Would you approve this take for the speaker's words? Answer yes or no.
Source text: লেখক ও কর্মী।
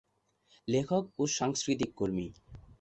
no